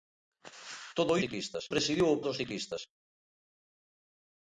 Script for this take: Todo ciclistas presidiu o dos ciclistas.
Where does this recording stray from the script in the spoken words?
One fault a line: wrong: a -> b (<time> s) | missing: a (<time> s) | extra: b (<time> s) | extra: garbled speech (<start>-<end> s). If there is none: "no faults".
no faults